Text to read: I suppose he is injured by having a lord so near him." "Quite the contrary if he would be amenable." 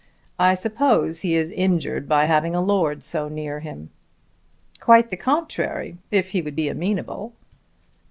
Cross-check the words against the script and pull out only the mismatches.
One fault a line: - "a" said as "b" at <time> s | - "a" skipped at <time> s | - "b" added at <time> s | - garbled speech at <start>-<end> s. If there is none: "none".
none